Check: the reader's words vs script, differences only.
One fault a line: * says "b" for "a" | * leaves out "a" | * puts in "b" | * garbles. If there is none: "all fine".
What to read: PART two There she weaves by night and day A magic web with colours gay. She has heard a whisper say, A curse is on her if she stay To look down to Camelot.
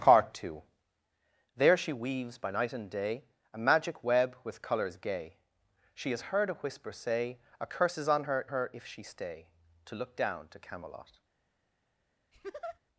* puts in "her"